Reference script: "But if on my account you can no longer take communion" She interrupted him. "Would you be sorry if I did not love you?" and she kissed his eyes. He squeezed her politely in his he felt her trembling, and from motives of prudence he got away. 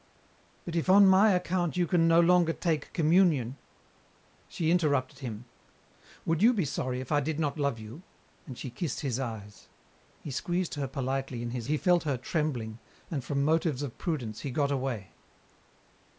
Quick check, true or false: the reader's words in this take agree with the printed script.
true